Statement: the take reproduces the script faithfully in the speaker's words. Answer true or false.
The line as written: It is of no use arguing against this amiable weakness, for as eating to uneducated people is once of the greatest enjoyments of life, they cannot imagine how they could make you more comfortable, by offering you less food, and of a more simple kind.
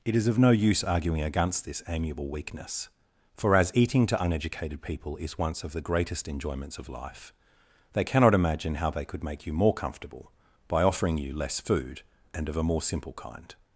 true